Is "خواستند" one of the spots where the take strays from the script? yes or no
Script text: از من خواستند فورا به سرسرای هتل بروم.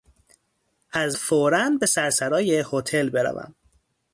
yes